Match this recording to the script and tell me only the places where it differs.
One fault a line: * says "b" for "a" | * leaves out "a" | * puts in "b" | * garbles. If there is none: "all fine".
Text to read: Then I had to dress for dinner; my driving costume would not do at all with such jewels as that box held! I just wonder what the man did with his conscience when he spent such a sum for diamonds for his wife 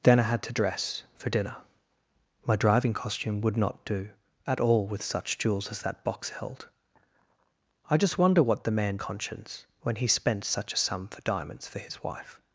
* leaves out "did with his"